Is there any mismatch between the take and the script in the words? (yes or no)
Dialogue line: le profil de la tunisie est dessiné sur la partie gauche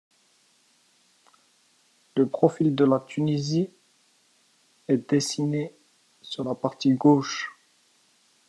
no